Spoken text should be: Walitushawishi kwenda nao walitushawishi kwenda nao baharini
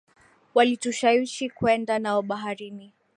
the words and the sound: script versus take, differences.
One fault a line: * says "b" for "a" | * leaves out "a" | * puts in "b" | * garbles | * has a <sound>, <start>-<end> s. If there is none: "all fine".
* leaves out "walitushawishi kwenda nao"